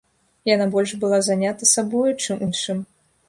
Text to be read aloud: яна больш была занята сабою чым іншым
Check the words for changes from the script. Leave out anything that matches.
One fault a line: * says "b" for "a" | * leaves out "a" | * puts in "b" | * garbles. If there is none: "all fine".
all fine